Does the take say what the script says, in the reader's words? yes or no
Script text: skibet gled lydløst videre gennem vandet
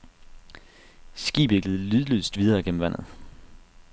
yes